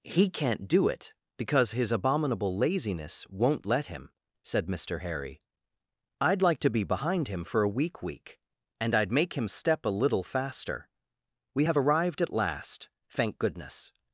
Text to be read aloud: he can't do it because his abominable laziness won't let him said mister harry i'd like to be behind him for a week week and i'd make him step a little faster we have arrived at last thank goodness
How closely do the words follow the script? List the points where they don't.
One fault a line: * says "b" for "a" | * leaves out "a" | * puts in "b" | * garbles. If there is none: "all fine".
all fine